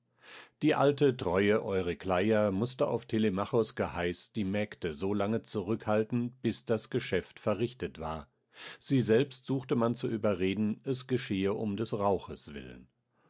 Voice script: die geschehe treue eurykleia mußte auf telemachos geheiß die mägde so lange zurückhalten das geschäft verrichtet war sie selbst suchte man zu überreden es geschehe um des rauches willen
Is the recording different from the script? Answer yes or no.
yes